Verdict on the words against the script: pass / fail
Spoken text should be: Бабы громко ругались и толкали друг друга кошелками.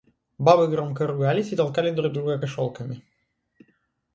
pass